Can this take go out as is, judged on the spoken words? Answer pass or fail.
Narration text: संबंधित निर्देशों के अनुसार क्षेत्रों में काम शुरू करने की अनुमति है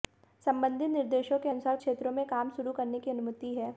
pass